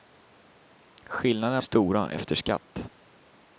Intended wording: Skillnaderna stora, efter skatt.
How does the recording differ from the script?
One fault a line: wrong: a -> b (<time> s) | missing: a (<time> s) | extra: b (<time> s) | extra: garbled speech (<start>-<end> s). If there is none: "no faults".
no faults